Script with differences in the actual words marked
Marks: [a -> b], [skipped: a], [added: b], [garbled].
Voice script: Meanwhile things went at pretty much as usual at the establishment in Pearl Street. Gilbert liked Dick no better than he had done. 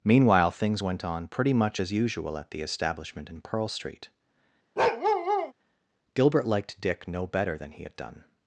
Meanwhile things went [at -> on] pretty much as usual at the establishment in Pearl Street. Gilbert liked Dick no better than he had done.